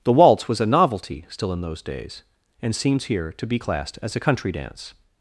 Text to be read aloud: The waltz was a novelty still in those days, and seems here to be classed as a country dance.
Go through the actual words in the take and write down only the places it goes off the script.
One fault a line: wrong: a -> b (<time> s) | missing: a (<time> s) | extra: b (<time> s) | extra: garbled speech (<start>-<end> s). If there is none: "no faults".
no faults